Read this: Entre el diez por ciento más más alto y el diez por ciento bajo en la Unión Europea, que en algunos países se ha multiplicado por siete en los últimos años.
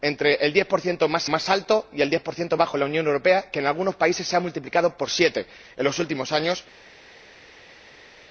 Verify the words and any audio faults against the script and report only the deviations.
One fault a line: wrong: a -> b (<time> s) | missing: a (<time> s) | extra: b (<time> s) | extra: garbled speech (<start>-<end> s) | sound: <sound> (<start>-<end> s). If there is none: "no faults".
no faults